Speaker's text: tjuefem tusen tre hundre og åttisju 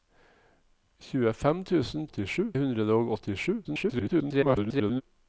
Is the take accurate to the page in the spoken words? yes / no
no